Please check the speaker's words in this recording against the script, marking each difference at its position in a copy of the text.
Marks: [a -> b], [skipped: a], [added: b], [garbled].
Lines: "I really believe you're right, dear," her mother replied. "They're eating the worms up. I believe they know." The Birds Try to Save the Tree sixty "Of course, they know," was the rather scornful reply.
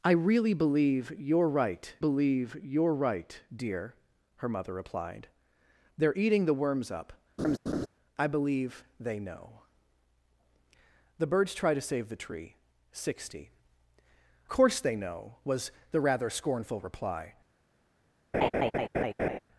"I really believe you're right, [added: believe you're right] dear," her mother replied. "They're eating the worms up. I believe they know." The Birds Try to Save the Tree sixty [skipped: "Of] course, they know," was the rather scornful reply.